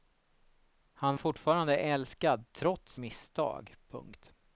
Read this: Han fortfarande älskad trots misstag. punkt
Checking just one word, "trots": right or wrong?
right